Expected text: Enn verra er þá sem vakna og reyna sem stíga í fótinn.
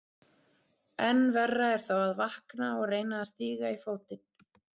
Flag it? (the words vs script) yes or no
yes